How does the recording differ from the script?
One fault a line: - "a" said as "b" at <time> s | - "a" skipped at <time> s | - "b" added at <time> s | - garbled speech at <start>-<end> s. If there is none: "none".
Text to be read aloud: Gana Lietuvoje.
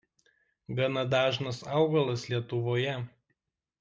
- "dažnas augalas" added at 1.1 s